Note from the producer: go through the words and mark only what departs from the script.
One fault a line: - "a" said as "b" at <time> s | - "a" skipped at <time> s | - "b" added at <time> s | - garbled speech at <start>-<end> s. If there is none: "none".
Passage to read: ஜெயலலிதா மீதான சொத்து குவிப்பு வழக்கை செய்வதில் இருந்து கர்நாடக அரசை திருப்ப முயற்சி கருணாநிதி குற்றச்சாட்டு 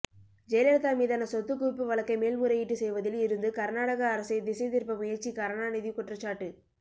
- "மேல்முறையீட்டு" added at 2.2 s
- "திசை" added at 4.4 s